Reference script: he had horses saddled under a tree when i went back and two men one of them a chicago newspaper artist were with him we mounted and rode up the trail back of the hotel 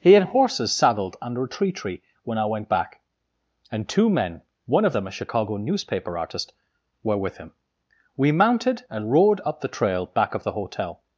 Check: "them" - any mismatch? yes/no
no